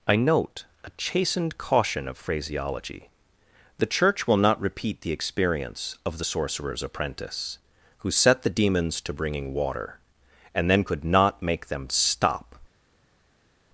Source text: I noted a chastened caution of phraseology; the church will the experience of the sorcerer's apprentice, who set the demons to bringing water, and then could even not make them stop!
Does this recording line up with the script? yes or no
no